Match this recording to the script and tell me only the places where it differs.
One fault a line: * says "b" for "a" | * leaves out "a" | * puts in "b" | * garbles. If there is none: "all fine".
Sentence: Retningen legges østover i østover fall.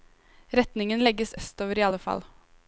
* says "alle" for "østover"